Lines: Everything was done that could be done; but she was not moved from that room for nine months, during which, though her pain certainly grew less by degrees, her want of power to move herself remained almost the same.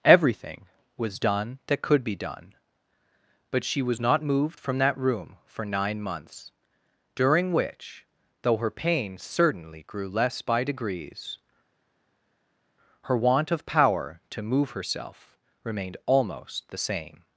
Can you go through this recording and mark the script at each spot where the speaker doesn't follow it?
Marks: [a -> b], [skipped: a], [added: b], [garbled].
Everything was done that could be done; but she was not moved from that room for nine months, during which, though her pain certainly grew less by degrees, her want of power to move herself remained almost the same.